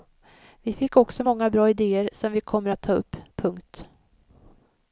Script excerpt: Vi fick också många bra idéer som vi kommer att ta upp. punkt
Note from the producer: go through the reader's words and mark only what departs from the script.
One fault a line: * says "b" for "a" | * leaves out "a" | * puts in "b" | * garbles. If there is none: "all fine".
all fine